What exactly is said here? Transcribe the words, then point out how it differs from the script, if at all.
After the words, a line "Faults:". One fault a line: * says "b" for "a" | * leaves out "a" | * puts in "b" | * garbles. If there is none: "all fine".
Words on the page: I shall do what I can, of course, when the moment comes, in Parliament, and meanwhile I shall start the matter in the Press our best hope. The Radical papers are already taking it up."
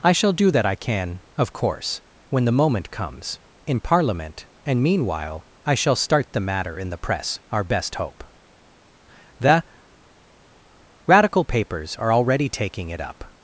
I shall do that I can, of course, when the moment comes, in Parliament, and meanwhile I shall start the matter in the Press our best hope. The Radical papers are already taking it up."
Faults:
* says "that" for "what"